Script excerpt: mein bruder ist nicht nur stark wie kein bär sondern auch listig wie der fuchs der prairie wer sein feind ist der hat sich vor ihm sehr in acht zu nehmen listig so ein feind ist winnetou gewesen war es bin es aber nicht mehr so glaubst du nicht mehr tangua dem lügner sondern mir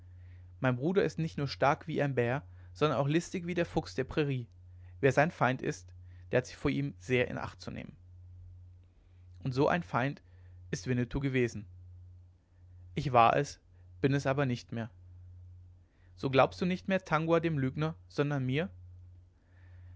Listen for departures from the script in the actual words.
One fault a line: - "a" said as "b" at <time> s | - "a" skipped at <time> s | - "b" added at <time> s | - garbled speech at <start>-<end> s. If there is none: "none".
- "kein" said as "ein" at 2.0 s
- "listig" said as "und" at 9.4 s
- "ich" added at 12.9 s